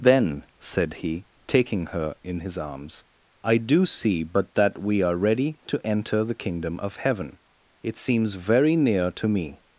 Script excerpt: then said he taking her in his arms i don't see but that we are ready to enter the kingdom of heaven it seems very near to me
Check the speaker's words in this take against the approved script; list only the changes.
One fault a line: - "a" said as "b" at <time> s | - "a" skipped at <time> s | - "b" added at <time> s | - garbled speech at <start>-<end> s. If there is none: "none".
- "don't" said as "do" at 3.6 s